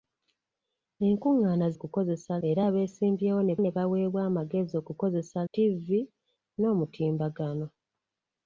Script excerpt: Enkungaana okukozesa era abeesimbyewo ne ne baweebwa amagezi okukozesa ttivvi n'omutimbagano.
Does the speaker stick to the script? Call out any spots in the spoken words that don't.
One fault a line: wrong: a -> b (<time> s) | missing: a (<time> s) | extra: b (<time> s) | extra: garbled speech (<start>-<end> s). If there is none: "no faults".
no faults